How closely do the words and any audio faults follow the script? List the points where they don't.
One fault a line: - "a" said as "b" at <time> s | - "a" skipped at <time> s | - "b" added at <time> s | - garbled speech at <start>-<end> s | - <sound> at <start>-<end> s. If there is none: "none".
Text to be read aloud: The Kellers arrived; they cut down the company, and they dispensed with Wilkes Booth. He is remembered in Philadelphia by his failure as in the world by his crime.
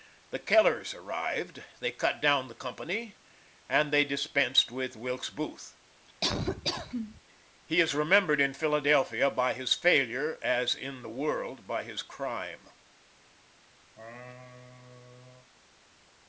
- laugh at 6.2-7.2 s
- laugh at 13.9-15.5 s